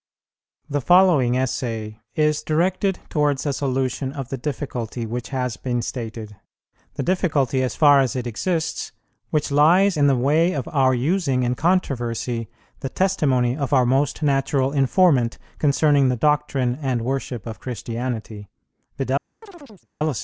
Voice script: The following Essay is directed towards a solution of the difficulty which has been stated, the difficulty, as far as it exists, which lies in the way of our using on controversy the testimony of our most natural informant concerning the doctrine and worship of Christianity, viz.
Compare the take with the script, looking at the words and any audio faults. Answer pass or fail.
fail